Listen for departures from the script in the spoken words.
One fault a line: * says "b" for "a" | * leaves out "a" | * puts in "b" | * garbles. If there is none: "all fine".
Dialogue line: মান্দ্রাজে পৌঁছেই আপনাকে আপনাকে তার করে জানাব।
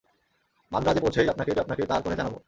all fine